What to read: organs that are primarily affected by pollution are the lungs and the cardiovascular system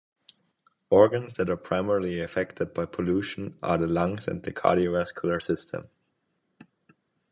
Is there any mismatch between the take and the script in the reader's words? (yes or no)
no